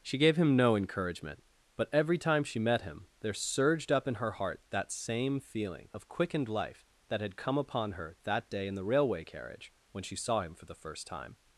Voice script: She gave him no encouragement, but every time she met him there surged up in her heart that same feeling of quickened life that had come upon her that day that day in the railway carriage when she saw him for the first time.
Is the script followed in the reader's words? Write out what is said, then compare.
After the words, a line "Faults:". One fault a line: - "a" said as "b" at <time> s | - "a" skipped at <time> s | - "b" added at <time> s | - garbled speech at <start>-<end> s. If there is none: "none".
She gave him no encouragement, but every time she met him there surged up in her heart that same feeling of quickened life that had come upon her that day in the railway carriage when she saw him for the first time.
Faults:
- "that day" skipped at 8.7 s